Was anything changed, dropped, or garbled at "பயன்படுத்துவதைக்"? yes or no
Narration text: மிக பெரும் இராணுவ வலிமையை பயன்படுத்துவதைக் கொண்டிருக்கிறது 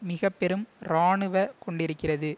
yes